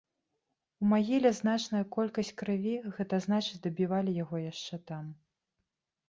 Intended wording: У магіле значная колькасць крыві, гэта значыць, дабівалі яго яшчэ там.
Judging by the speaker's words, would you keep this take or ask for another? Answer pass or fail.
pass